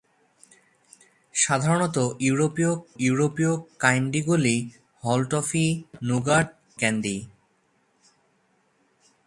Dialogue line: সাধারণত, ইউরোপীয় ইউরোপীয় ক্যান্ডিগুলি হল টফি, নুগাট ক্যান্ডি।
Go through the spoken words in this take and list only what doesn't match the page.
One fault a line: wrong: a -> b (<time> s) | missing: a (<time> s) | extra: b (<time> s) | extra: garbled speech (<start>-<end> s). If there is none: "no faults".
no faults